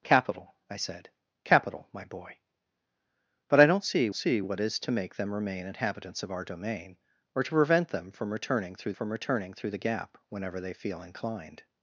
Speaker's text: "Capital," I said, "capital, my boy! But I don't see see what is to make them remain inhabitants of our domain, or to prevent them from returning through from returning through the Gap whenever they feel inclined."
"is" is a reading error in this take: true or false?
false